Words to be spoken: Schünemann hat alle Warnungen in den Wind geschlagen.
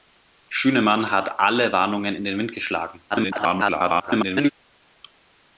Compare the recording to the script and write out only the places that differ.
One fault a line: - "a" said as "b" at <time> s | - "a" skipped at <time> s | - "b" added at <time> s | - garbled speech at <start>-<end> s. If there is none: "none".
- garbled speech at 3.1-4.5 s